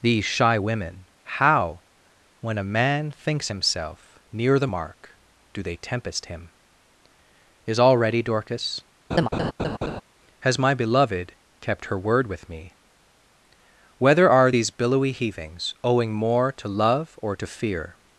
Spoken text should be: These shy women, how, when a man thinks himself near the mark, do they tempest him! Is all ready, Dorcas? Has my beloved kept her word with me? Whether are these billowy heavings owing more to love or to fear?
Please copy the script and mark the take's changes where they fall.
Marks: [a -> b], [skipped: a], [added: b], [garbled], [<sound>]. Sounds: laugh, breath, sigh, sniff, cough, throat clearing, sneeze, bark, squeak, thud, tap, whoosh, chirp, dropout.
These shy women, how, when a man thinks himself near the mark, do they tempest him! Is all ready, Dorcas? [laugh] Has my beloved kept her word with me? Whether are these billowy heavings owing more to love or to fear?